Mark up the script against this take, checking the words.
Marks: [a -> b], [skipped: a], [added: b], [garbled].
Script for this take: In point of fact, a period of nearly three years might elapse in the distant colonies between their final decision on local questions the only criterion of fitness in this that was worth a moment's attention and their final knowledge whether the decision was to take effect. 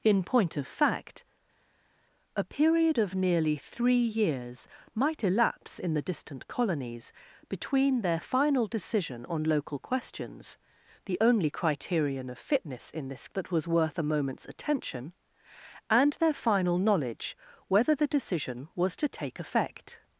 In point of fact, a period of nearly three years might elapse in the distant colonies between their final decision on local questions the only criterion of fitness in this that was worth a moment's attention and their final knowledge whether the decision was to take effect.